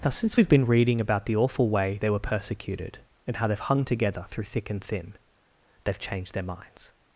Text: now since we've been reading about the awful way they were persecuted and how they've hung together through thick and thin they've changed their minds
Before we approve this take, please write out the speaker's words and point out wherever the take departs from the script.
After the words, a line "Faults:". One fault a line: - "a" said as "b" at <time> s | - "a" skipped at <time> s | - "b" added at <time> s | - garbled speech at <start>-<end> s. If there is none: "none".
now since we've been reading about the awful way they were persecuted and how they've hung together through thick and thin they've changed their minds
Faults:
none